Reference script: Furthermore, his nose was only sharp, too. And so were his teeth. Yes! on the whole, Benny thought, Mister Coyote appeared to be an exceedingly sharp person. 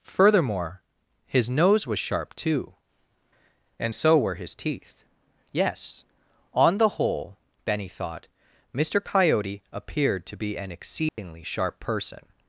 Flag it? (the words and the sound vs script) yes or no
yes